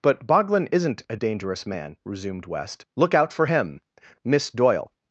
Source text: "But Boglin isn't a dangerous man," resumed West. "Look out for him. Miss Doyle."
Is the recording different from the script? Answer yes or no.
no